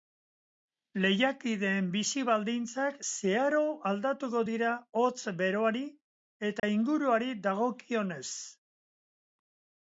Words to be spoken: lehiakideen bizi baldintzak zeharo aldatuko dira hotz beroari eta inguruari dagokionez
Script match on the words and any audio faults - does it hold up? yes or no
no